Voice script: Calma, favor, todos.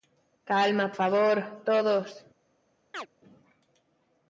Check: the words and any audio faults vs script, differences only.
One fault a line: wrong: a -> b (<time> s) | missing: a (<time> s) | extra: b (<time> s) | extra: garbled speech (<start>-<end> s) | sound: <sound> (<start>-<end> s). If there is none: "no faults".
sound: chirp (2.9-3.1 s)